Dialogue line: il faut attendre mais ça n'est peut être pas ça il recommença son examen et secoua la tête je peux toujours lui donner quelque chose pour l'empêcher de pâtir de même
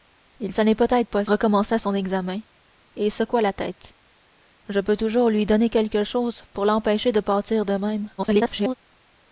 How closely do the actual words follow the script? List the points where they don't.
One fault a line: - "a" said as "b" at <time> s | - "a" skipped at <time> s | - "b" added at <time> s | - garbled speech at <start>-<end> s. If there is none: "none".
- "faut attendre mais" skipped at 0.5 s
- "ça il" skipped at 1.2 s
- garbled speech at 8.2-8.7 s